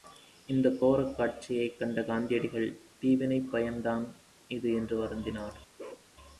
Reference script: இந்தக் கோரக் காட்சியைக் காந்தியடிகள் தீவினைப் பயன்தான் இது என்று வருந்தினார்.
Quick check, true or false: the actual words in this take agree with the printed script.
false